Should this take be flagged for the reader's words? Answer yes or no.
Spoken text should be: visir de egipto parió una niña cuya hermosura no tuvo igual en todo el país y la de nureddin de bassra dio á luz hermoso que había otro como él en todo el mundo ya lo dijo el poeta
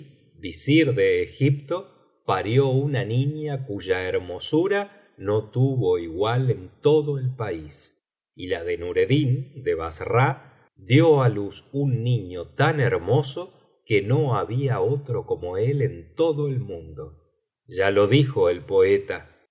yes